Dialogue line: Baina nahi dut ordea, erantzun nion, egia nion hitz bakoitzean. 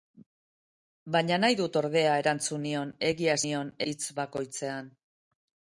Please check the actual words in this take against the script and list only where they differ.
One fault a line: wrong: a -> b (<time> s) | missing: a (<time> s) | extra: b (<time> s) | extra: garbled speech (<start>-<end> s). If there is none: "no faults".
no faults